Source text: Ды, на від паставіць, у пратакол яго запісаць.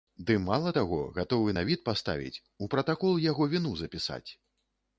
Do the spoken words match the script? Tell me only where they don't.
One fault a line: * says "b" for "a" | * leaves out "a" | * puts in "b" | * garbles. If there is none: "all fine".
* puts in "мала таго гатовы"
* puts in "віну"